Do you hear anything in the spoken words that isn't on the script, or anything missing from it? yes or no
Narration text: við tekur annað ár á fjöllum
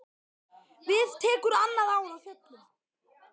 no